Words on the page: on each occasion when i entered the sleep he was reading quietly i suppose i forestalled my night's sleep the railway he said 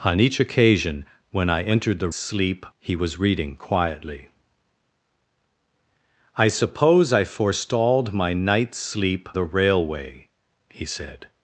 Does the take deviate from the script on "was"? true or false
false